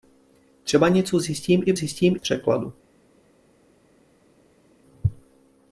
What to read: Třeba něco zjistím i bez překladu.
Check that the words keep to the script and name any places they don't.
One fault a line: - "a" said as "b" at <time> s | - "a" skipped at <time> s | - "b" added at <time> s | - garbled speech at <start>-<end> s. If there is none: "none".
- "bez" said as "zjistím" at 1.7 s